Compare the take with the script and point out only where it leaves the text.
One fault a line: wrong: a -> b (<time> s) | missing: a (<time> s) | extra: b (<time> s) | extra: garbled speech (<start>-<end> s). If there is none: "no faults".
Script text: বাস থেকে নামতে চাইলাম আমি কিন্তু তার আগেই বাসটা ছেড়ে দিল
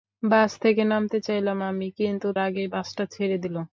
missing: তার (2.3 s)